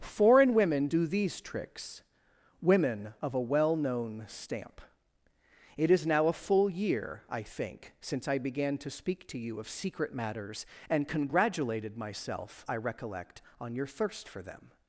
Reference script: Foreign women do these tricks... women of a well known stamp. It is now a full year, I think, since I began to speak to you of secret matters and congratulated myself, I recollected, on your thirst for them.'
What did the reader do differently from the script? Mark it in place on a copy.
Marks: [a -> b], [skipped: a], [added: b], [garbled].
Foreign women do these tricks... women of a well known stamp. It is now a full year, I think, since I began to speak to you of secret matters and congratulated myself, I [recollected, -> recollect] on your thirst for them.'